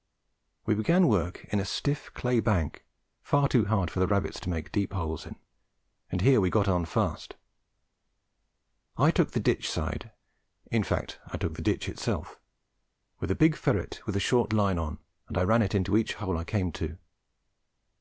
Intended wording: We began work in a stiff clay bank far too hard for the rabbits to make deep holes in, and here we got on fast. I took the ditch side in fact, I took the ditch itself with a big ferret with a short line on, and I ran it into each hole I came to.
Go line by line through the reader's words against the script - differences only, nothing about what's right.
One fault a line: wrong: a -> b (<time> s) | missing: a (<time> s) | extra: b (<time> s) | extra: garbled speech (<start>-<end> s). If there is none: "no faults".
no faults